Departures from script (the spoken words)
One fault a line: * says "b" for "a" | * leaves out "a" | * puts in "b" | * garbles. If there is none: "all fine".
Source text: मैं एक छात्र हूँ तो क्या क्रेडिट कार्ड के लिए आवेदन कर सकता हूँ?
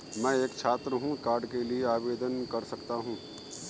* leaves out "तो क्या क्रेडिट"